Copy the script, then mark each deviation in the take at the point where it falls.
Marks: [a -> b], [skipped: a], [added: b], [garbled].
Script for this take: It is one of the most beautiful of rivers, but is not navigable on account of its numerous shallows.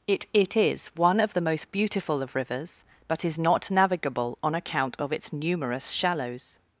It [added: it] is one of the most beautiful of rivers, but is not navigable on account of its numerous shallows.